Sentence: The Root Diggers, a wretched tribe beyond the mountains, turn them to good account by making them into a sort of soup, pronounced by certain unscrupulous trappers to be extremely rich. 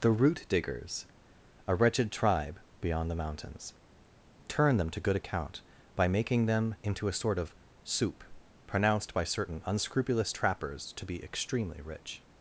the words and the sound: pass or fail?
pass